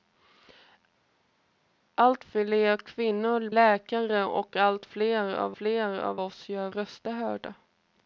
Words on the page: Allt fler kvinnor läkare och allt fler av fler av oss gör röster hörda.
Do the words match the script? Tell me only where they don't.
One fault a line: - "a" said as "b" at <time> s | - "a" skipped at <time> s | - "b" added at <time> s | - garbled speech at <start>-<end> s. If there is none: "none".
none